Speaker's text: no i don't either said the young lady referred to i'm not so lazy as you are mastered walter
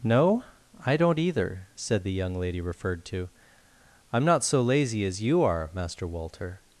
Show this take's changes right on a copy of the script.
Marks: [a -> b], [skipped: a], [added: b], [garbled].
no i don't either said the young lady referred to i'm not so lazy as you are [mastered -> master] walter